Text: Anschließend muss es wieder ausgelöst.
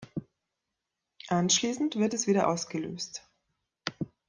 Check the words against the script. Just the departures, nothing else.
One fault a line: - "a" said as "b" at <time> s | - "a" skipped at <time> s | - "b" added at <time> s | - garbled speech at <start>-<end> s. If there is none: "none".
- "muss" said as "wird" at 1.9 s